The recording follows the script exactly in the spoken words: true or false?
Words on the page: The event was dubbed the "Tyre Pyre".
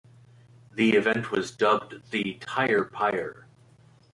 true